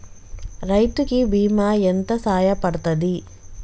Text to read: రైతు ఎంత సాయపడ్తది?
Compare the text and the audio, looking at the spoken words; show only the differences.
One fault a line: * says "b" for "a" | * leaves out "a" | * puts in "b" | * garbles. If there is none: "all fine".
* puts in "కి బీమా"